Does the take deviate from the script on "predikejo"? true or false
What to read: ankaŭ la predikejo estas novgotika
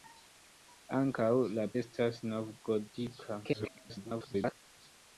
true